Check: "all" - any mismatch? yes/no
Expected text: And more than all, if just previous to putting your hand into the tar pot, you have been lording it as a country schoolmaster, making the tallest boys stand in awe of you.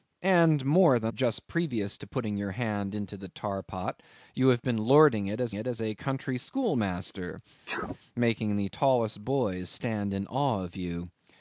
yes